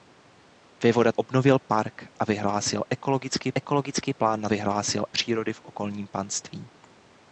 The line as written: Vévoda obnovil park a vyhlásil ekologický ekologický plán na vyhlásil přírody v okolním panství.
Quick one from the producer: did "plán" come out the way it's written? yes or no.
yes